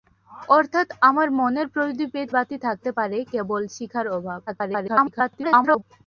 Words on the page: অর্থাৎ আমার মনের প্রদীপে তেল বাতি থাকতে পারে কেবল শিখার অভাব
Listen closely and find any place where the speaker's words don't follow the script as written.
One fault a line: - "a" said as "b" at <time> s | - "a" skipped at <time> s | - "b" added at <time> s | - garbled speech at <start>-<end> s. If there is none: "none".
- "তেল" skipped at 2.2 s
- garbled speech at 4.5-5.8 s